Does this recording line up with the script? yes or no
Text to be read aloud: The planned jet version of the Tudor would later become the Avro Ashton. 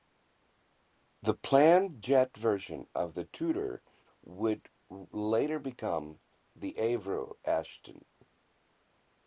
yes